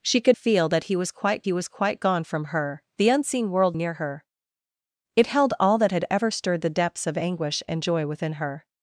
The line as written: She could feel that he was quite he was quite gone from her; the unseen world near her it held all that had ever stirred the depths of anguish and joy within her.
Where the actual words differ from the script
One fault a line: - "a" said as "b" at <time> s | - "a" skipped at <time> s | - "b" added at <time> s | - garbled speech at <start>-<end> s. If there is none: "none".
none